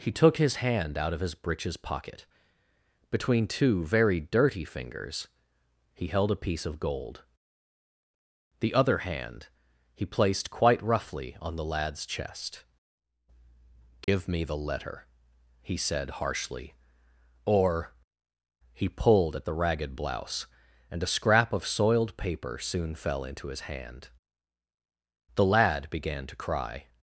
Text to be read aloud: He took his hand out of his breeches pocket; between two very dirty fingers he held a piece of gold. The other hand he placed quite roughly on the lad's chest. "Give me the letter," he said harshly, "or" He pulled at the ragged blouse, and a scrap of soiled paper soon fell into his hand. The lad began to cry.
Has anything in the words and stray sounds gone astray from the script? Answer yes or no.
yes